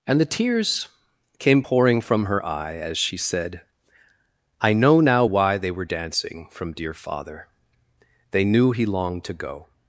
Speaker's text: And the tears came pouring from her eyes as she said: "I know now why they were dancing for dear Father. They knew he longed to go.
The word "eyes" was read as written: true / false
false